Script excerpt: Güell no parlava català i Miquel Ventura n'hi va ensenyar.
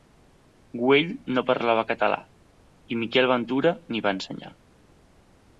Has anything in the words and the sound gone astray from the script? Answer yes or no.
no